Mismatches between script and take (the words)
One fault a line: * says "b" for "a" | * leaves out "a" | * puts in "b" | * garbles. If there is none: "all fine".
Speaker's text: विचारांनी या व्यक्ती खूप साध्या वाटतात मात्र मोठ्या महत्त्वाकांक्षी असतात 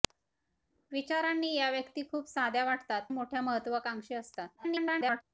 * leaves out "मात्र"
* garbles